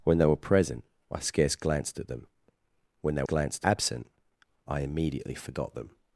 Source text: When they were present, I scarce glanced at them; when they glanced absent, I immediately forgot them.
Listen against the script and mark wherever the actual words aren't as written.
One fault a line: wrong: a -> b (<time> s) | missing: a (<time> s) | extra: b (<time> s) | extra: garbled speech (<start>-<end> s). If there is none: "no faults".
no faults